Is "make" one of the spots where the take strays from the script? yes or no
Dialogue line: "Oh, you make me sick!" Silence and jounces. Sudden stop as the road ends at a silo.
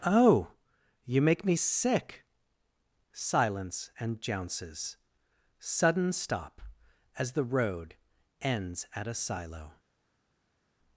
no